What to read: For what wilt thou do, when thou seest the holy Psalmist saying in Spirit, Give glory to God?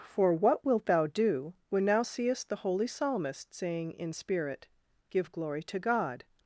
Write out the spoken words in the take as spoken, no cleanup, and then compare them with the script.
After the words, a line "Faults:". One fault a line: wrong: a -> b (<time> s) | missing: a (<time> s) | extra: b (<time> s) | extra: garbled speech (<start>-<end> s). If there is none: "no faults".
For what wilt thou do, when thou seest the holy Psalmist saying in Spirit, Give glory to God?
Faults:
no faults